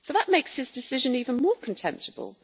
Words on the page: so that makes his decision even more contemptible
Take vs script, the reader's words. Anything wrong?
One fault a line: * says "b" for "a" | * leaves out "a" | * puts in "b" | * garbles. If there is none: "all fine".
all fine